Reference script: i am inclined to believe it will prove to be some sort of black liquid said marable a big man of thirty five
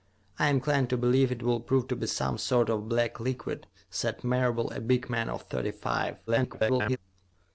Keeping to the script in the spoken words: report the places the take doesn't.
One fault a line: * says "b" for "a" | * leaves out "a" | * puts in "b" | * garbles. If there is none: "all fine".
* garbles